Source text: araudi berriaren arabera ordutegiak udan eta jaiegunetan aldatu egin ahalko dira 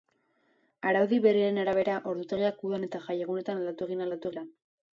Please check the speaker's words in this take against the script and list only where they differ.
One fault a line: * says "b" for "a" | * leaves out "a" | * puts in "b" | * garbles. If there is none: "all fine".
* says "aldatu" for "ahalko"